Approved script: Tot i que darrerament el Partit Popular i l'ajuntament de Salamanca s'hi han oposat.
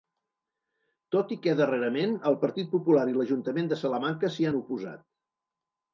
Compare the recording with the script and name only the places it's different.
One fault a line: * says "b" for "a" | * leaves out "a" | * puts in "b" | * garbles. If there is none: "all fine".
all fine